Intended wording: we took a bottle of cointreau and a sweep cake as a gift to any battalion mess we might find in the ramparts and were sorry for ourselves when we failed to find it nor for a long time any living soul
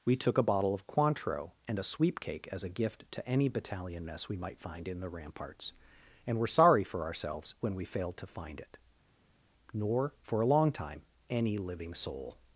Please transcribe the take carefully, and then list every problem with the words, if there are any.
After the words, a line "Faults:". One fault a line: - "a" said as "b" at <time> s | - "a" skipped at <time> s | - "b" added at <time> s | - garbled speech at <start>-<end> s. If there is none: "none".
we took a bottle of cointreau and a sweep cake as a gift to any battalion mess we might find in the ramparts and were sorry for ourselves when we failed to find it nor for a long time any living soul
Faults:
none